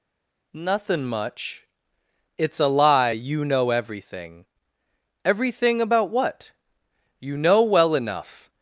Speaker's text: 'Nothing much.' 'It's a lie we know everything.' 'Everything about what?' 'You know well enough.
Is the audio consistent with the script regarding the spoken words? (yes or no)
no